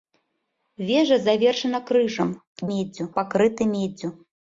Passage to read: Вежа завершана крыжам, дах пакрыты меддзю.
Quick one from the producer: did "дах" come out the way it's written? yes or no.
no